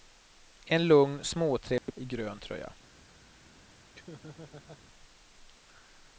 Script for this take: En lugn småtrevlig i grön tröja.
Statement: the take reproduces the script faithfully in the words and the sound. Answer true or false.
false